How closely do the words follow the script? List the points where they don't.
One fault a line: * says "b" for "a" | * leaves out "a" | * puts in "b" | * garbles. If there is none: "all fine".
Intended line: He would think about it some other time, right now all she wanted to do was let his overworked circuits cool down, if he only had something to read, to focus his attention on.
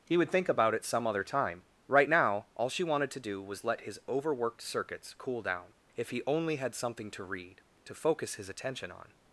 all fine